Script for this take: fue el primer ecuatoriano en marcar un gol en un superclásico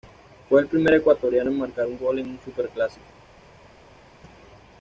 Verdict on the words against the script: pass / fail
pass